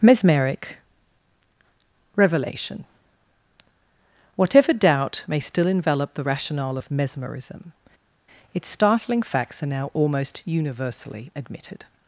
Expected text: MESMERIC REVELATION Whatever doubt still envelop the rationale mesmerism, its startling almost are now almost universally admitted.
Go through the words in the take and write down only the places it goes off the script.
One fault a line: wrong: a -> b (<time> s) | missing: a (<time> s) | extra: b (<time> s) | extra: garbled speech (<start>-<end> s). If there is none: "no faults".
extra: may (5.3 s)
extra: of (6.8 s)
wrong: almost -> facts (9.2 s)